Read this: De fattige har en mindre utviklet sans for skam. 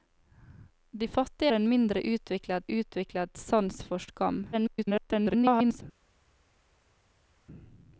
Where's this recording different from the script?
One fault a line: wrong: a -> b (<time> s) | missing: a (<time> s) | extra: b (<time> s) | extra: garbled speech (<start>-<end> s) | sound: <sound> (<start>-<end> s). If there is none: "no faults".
missing: har (1.5 s)
extra: utviklet (2.7 s)
extra: garbled speech (4.5-5.8 s)